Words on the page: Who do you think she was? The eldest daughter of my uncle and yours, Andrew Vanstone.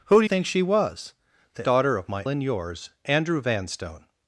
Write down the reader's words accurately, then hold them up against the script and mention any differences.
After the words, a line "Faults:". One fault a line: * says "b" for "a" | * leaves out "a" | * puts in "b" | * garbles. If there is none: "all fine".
Who do think she was? The daughter of my and yours, Andrew Vanstone.
Faults:
* leaves out "you"
* leaves out "eldest"
* leaves out "uncle"